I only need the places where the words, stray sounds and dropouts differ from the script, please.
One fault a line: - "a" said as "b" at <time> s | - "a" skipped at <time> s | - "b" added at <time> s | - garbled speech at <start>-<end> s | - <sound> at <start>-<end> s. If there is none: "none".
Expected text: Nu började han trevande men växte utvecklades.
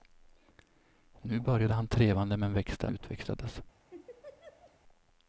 - laugh at 3.9-4.8 s